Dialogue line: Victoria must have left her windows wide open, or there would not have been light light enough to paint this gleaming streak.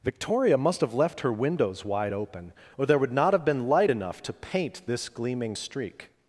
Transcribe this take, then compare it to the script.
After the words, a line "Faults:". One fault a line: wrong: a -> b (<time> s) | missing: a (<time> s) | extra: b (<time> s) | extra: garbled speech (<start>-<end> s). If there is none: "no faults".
Victoria must have left her windows wide open, or there would not have been light enough to paint this gleaming streak.
Faults:
missing: light (3.9 s)